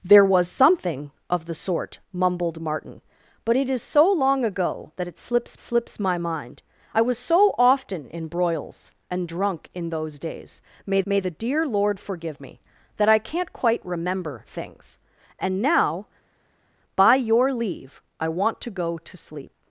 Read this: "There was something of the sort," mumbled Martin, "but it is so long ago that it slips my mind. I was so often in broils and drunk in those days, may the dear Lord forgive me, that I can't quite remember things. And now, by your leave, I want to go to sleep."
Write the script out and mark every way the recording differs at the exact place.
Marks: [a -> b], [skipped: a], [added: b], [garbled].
"There was something of the sort," mumbled Martin, "but it is so long ago that it slips [added: slips] my mind. I was so often in broils and drunk in those days, may [added: may] the dear Lord forgive me, that I can't quite remember things. And now, by your leave, I want to go to sleep."